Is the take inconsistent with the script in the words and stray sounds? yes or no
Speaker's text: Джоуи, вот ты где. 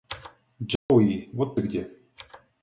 yes